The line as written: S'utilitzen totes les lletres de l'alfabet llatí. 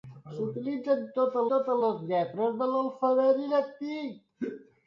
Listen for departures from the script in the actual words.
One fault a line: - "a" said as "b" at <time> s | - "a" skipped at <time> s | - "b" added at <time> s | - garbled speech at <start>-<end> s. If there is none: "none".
- "totes" added at 1.5 s